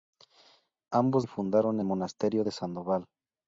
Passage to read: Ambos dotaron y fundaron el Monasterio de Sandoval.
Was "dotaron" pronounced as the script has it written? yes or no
no